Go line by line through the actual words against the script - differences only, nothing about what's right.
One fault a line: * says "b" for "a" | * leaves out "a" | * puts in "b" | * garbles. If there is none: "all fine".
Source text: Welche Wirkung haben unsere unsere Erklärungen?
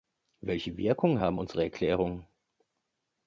* leaves out "unsere"